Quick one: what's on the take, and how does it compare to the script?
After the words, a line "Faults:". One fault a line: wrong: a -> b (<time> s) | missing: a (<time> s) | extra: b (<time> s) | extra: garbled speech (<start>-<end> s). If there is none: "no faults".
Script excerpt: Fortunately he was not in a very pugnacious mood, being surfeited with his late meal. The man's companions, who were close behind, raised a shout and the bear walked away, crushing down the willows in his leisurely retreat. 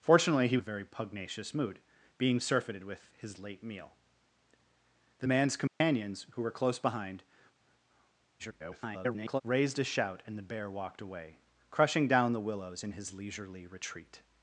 Fortunately he a very pugnacious mood, being surfeited with his late meal. The man's companions, who were close behind, [garbled] raised a shout and the bear walked away, crushing down the willows in his leisurely retreat.
Faults:
missing: was not in (0.6 s)
extra: garbled speech (8.4-9.4 s)